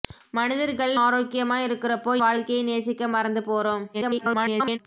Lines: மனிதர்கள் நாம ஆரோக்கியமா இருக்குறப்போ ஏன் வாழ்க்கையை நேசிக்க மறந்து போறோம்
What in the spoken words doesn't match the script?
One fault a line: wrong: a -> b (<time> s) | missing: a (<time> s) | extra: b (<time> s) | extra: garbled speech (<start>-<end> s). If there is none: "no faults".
missing: நாம (0.9 s)
missing: ஏன் (2.1 s)
extra: garbled speech (3.9-4.8 s)